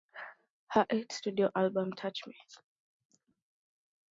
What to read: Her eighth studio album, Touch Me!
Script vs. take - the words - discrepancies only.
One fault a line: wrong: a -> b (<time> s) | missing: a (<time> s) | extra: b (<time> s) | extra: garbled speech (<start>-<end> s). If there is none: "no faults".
no faults